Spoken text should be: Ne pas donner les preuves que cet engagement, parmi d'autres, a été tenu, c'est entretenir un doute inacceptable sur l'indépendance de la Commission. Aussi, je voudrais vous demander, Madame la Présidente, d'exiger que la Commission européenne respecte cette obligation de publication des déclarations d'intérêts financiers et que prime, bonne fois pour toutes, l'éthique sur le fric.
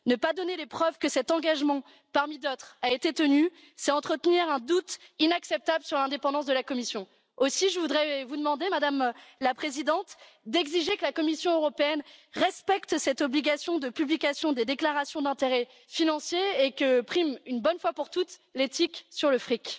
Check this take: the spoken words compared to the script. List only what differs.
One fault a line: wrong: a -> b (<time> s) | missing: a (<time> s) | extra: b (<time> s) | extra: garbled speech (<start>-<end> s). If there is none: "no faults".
extra: une (17.5 s)